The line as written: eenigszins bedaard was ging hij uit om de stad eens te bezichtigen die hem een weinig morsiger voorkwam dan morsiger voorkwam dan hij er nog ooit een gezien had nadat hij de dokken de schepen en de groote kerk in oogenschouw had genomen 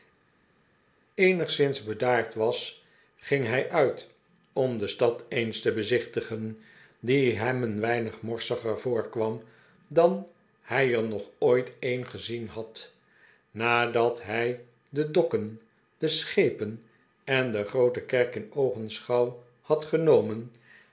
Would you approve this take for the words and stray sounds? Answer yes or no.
no